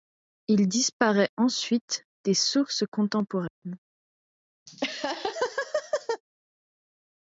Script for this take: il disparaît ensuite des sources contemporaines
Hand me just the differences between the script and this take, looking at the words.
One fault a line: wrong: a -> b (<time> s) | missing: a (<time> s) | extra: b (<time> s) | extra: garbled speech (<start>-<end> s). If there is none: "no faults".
no faults